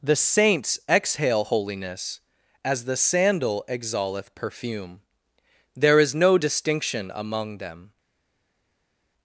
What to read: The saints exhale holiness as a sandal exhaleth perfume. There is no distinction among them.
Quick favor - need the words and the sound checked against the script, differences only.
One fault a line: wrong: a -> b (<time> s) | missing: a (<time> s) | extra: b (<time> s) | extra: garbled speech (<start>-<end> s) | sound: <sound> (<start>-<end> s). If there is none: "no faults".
wrong: a -> the (2.8 s)